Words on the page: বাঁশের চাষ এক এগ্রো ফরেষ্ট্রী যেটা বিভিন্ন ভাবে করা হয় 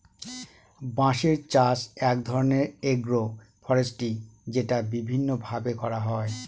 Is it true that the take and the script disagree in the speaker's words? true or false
true